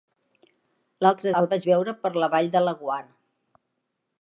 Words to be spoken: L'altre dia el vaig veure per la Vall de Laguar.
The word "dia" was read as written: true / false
false